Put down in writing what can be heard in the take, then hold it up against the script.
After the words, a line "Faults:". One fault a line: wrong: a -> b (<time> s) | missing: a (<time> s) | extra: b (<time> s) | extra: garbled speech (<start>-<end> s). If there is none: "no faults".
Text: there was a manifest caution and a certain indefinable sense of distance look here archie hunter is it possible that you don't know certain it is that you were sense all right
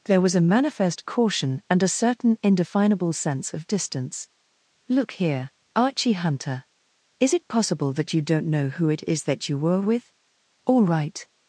there was a manifest caution and a certain indefinable sense of distance look here archie hunter is it possible that you don't know who it is that you were with all right
Faults:
wrong: certain -> who (8.7 s)
wrong: sense -> with (9.8 s)